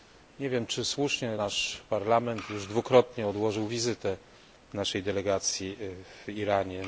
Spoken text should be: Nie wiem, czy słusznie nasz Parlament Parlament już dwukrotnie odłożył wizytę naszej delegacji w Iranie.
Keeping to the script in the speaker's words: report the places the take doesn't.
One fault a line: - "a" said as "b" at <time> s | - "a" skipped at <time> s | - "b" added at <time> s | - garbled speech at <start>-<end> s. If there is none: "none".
- "Parlament" skipped at 2.5 s